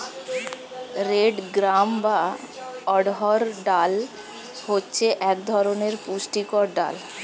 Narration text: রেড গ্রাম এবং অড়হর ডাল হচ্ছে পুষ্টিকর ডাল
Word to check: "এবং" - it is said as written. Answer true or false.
false